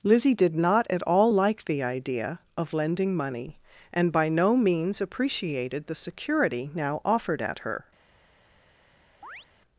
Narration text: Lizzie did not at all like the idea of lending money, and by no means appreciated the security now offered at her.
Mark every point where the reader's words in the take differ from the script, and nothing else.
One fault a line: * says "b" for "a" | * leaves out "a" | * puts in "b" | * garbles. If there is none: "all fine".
all fine